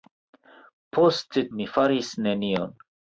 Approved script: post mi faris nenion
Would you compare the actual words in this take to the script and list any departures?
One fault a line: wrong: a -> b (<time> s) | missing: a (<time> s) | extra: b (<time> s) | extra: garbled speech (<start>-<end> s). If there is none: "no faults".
no faults